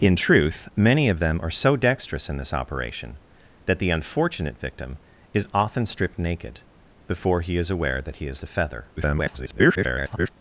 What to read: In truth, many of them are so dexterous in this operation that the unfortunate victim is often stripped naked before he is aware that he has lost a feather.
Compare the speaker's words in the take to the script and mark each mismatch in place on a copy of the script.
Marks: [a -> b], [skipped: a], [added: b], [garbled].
In truth, many of them are so dexterous in this operation that the unfortunate victim is often stripped naked before he is aware that he has [skipped: lost] a feather. [garbled]